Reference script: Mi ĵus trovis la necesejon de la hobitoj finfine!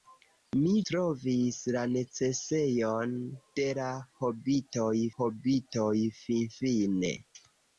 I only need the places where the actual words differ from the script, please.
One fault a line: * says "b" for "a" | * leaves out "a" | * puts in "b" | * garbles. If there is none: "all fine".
* leaves out "ĵus"
* puts in "hobitoj"